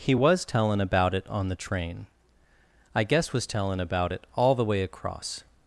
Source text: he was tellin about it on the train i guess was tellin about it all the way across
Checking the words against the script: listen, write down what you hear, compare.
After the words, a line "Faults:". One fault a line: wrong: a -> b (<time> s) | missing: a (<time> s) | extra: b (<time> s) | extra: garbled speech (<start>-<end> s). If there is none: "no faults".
he was tellin about it on the train i guess was tellin about it all the way across
Faults:
no faults